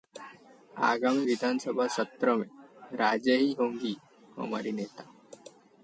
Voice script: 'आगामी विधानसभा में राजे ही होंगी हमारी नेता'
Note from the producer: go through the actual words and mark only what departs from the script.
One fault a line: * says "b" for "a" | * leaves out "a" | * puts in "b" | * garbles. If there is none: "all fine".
* puts in "सत्र"